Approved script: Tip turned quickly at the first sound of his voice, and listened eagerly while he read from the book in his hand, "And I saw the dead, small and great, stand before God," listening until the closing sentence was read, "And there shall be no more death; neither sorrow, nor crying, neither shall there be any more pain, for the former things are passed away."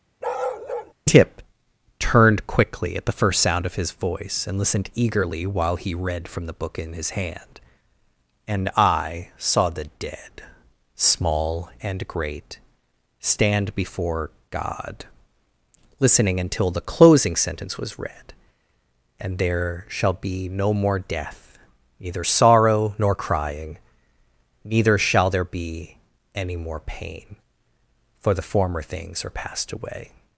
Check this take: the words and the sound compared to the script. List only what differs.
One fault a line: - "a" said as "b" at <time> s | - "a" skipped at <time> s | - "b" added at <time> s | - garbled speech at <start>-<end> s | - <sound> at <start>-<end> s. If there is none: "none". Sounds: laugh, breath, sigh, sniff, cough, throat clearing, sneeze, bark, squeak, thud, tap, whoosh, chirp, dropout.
- bark at 0.2-0.9 s